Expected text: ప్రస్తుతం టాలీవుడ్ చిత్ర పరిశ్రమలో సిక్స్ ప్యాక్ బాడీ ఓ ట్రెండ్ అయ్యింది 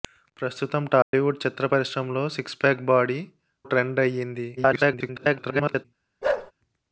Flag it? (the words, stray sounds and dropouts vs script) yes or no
yes